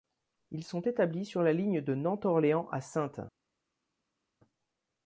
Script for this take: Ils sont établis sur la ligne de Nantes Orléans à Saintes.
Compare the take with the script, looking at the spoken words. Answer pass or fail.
pass